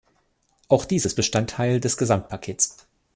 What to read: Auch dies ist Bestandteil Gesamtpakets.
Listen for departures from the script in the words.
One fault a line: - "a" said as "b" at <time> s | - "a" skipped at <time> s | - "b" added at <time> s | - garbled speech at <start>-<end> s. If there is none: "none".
- "des" added at 1.8 s